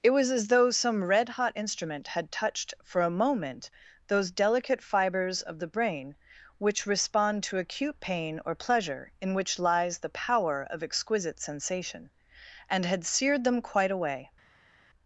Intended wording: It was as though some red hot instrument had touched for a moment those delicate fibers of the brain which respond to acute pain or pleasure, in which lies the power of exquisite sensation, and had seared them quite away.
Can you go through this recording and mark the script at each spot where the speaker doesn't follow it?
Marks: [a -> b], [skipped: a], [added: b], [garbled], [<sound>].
It was as though some red hot instrument had touched for a moment those delicate fibers of the brain which respond to acute pain or pleasure, in which lies the power of exquisite sensation, and had seared them quite away.